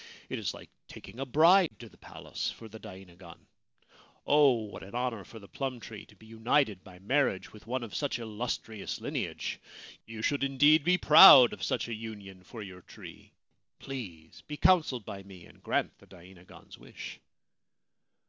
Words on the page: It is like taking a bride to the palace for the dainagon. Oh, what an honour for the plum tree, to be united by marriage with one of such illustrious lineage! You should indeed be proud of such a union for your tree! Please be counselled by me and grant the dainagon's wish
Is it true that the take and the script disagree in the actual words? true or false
false